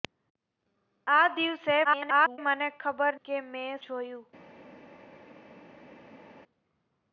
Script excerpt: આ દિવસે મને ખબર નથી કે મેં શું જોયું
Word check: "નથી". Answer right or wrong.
wrong